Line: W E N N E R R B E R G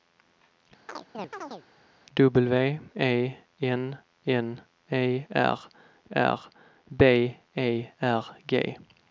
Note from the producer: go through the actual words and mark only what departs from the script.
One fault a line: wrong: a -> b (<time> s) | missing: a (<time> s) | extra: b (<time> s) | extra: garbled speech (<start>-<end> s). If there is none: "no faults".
no faults